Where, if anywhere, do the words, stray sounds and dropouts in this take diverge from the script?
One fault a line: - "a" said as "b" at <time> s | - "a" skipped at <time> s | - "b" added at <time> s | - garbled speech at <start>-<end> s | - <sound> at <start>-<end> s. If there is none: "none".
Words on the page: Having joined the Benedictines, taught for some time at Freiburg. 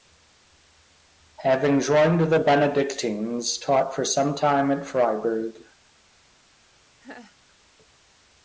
- laugh at 7.0-7.4 s